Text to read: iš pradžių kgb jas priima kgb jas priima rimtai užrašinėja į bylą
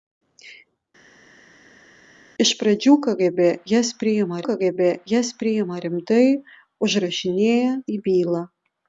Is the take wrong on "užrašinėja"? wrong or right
right